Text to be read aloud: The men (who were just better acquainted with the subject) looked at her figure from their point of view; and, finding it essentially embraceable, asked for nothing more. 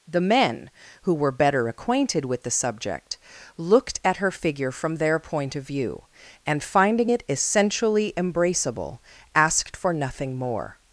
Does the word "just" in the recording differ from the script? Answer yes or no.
yes